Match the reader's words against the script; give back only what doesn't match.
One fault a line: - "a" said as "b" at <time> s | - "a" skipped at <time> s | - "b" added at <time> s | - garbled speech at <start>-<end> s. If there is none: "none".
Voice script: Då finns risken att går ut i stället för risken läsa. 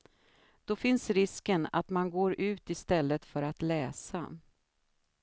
- "man" added at 1.9 s
- "risken" said as "att" at 3.4 s